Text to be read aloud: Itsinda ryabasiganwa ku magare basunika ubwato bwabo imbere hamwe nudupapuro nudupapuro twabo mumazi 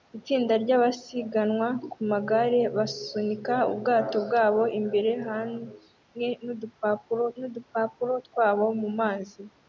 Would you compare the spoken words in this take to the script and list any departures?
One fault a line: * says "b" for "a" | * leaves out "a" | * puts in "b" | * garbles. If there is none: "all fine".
all fine